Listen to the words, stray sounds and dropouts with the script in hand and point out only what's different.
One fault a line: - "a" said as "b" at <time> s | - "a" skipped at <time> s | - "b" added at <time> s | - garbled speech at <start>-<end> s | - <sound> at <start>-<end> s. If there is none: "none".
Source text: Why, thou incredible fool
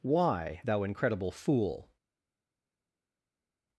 none